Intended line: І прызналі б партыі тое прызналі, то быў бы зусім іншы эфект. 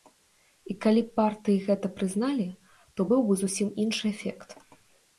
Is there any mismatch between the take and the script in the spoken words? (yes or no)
yes